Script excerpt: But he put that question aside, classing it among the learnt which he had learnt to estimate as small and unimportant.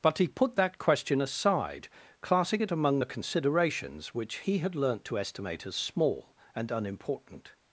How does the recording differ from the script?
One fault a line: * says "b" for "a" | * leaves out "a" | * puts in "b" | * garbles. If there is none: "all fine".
* says "considerations" for "learnt"